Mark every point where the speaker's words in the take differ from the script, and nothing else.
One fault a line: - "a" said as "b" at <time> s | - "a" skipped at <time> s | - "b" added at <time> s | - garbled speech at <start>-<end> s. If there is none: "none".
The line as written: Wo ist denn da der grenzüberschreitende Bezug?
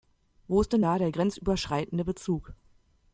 none